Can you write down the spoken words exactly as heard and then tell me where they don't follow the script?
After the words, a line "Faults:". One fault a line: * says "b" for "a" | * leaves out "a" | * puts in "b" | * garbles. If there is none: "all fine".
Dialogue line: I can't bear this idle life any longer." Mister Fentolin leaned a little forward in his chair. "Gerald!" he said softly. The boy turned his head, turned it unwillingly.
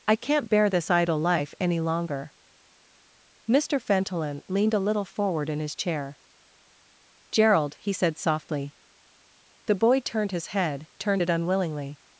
I can't bear this idle life any longer." Mister Fentolin leaned a little forward in his chair. "Gerald!" he said softly. The boy turned his head, turned it unwillingly.
Faults:
all fine